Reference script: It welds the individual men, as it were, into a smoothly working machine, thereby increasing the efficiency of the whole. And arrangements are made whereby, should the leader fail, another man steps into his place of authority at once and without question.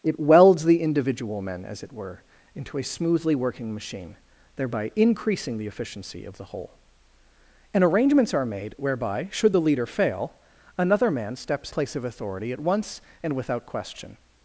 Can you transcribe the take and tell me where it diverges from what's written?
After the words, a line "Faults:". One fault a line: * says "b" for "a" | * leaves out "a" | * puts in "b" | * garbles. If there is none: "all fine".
It welds the individual men, as it were, into a smoothly working machine, thereby increasing the efficiency of the whole. And arrangements are made whereby, should the leader fail, another man steps place of authority at once and without question.
Faults:
* leaves out "into his"